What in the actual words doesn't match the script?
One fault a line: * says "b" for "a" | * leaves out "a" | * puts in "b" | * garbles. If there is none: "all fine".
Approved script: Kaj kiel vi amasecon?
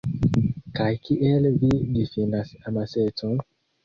* puts in "difinas"